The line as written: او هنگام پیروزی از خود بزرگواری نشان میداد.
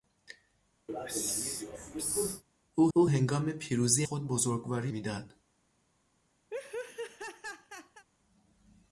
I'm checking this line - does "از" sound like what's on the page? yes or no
no